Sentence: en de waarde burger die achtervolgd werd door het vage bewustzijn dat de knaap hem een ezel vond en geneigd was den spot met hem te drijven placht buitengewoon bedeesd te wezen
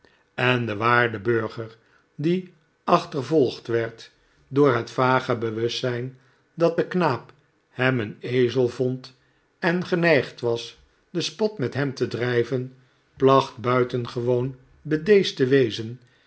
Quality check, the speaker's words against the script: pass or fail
pass